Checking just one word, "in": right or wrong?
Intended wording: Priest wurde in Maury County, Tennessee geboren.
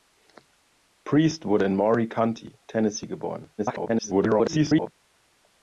right